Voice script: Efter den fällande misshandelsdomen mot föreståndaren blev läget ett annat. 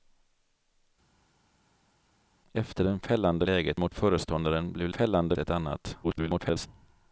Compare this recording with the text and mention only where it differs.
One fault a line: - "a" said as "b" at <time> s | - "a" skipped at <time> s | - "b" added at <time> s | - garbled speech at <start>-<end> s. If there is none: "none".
- "misshandelsdomen" said as "läget" at 3.4 s
- "läget" said as "fällande" at 4.9 s
- garbled speech at 6.0-6.7 s